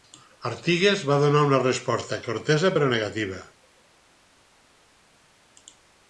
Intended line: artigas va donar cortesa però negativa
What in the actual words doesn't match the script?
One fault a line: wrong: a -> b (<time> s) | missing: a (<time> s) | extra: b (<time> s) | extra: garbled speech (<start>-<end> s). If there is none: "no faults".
extra: una resposta (1.5 s)